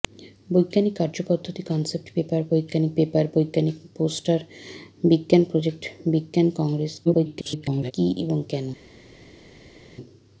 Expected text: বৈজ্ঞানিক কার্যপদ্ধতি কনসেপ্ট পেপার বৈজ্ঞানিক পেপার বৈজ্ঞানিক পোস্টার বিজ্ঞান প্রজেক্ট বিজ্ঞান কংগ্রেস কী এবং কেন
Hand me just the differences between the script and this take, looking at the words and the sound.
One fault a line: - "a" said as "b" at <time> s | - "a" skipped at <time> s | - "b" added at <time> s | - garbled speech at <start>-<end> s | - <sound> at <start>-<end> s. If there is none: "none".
- garbled speech at 7.0-7.9 s